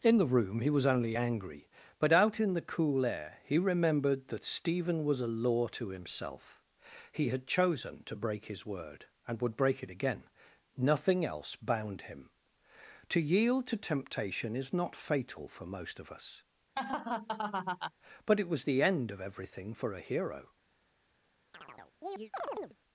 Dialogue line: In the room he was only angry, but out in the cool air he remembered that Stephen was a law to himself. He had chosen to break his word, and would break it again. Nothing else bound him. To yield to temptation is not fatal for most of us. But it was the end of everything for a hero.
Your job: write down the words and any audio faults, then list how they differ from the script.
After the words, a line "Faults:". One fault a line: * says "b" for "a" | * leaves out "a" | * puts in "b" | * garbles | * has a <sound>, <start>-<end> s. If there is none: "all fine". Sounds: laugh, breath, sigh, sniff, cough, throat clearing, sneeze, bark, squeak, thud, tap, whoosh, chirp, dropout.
In the room he was only angry, but out in the cool air he remembered that Stephen was a law to himself. He had chosen to break his word, and would break it again. Nothing else bound him. To yield to temptation is not fatal for most of us. But it was the end of everything for a hero.
Faults:
* has a laugh, 16.8-17.9 s
* has a chirp, 21.5-22.8 s